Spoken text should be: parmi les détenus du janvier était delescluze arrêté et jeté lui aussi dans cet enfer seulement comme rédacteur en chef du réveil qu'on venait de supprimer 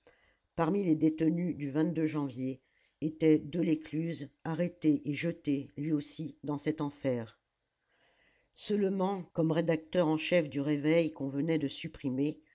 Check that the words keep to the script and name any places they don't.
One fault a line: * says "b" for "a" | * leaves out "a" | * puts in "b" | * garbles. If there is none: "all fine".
all fine